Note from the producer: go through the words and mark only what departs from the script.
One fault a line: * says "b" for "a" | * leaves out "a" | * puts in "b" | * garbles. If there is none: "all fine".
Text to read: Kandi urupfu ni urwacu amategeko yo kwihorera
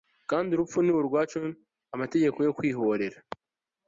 all fine